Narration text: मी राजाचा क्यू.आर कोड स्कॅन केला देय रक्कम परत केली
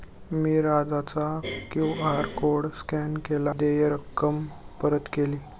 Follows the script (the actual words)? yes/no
yes